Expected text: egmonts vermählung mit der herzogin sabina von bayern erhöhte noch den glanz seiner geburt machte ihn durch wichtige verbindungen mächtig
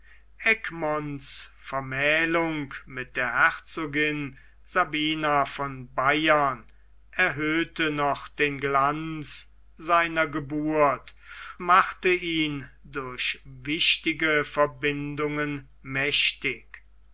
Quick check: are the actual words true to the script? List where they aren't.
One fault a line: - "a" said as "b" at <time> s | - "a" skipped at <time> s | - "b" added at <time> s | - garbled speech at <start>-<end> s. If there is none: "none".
none